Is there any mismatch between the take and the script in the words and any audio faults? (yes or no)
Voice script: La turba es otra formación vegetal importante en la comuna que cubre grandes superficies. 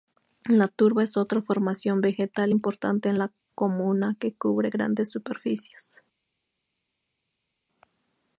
no